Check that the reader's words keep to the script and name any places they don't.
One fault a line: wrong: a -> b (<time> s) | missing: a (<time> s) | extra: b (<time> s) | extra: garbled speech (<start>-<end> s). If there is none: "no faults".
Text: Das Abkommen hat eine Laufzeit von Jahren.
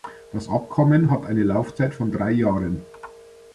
extra: drei (2.1 s)